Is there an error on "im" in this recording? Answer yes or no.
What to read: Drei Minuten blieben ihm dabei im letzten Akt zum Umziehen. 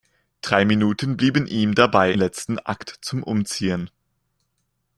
yes